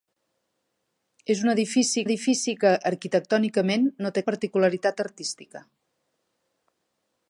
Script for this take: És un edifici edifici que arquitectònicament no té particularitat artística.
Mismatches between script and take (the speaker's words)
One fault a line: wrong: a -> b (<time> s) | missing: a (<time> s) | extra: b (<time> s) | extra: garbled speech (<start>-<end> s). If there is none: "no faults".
no faults